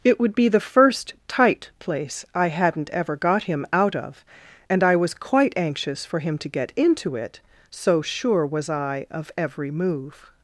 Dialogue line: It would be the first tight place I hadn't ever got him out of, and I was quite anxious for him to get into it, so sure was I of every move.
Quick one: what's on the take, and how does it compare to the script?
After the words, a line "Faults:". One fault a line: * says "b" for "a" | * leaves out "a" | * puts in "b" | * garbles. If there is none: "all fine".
It would be the first tight place I hadn't ever got him out of, and I was quite anxious for him to get into it, so sure was I of every move.
Faults:
all fine